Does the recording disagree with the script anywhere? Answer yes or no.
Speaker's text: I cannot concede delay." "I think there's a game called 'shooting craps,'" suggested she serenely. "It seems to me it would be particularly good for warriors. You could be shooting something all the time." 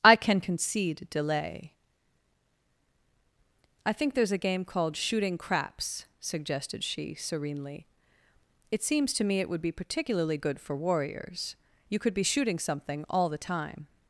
yes